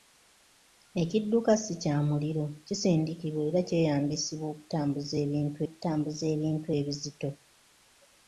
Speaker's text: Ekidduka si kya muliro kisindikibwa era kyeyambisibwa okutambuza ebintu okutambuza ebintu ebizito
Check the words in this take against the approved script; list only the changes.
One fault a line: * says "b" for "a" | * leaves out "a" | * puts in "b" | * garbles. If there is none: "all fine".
all fine